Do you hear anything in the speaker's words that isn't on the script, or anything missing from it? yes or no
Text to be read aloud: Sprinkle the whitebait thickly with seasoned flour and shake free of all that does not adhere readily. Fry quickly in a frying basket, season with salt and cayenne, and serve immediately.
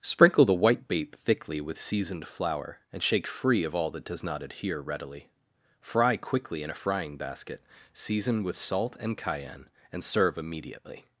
no